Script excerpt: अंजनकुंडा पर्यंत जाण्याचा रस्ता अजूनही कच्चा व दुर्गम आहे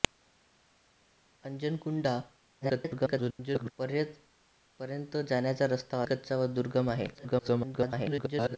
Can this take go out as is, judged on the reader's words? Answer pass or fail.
fail